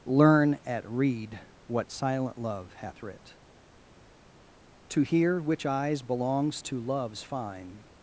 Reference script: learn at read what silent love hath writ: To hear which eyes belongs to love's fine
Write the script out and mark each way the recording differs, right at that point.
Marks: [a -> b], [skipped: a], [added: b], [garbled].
learn at read what silent love hath writ: To hear which eyes belongs to love's fine